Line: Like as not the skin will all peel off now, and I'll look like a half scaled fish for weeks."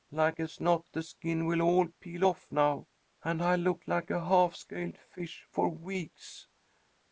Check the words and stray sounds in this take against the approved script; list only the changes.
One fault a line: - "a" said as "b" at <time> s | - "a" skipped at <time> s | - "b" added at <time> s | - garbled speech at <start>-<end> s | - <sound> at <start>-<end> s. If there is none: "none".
none